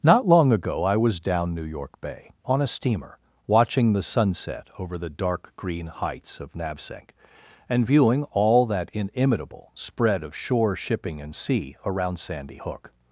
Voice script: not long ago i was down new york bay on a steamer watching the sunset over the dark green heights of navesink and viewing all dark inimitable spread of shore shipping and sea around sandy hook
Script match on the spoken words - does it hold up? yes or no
no